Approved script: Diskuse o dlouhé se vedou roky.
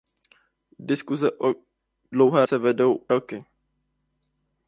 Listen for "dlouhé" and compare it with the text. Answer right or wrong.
right